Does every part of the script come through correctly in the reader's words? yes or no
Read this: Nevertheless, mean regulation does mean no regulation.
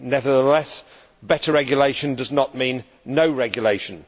no